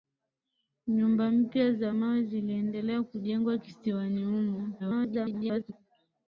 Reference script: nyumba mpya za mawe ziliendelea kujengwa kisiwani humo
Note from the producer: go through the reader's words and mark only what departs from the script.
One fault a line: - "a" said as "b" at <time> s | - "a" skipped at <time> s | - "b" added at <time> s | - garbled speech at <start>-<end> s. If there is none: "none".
- garbled speech at 4.8-5.7 s